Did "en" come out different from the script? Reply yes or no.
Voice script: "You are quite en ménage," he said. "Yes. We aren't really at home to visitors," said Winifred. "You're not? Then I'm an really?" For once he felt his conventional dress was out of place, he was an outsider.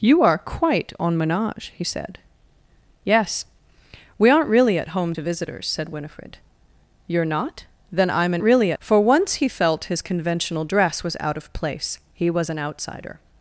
no